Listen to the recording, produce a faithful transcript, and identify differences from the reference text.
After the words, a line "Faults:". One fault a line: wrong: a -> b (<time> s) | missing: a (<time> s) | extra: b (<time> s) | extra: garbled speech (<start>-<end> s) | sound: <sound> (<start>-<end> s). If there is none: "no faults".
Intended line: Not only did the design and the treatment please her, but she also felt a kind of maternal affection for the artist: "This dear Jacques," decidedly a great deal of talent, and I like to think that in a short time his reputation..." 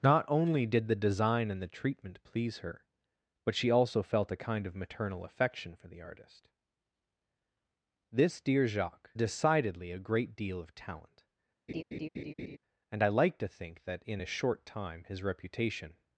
Not only did the design and the treatment please her, but she also felt a kind of maternal affection for the artist: "This dear Jacques," decidedly a great deal of talent, and I like to think that in a short time his reputation..."
Faults:
sound: laugh (11.7-12.6 s)